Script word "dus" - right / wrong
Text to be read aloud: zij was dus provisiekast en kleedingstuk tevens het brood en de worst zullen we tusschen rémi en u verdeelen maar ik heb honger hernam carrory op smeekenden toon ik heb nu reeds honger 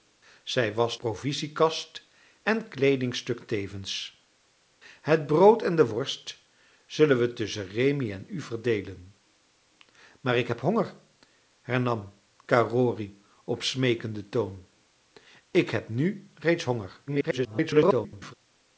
wrong